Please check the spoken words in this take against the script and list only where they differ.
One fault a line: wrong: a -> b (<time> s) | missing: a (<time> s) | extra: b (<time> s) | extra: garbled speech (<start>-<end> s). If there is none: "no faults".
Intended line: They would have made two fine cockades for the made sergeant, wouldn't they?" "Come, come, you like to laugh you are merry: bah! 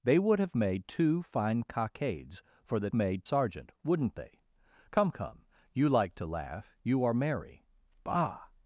no faults